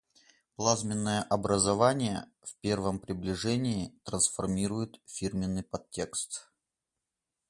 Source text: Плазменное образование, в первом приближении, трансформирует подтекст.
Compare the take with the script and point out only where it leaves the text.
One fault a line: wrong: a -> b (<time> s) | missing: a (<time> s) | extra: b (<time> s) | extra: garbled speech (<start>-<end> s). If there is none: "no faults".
extra: фирменный (5.0 s)